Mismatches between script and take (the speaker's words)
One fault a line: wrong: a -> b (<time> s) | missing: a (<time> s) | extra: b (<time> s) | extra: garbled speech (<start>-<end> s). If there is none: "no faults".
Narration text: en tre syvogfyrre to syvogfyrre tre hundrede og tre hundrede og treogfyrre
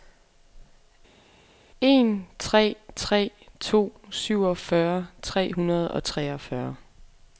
wrong: syvogfyrre -> tre (3.0 s)
missing: tre hundrede og (6.0 s)